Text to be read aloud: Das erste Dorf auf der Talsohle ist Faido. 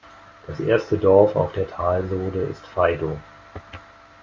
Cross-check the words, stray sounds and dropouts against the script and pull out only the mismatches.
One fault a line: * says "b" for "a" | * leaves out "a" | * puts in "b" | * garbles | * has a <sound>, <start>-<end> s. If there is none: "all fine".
all fine